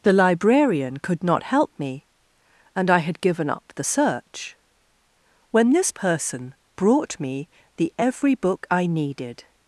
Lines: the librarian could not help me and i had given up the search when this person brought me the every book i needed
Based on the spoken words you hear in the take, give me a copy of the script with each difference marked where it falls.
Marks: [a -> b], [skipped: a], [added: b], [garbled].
the librarian could not help me and i had given up the search when this person brought me the every book i needed